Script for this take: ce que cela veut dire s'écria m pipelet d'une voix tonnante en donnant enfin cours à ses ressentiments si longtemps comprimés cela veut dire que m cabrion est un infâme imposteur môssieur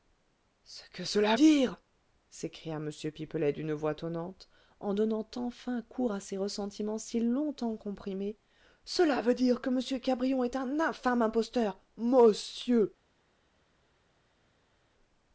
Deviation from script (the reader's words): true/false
true